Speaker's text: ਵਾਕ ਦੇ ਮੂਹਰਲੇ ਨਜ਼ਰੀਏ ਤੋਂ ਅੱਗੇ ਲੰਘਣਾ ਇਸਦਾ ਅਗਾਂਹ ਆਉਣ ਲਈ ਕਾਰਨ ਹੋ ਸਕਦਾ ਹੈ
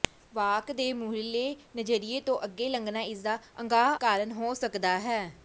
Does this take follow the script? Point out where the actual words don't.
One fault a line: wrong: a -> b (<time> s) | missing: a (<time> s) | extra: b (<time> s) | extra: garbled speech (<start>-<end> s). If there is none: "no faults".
missing: ਆਉਣ ਲਈ (4.0 s)